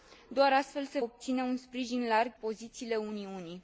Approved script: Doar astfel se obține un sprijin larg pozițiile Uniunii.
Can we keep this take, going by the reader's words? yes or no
yes